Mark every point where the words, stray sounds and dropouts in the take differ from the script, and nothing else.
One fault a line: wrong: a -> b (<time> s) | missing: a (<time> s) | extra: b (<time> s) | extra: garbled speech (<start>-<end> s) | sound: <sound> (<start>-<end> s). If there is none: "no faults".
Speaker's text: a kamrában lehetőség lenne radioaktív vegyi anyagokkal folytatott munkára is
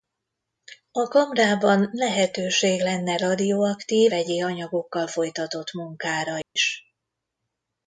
sound: dropout (6.4-6.6 s)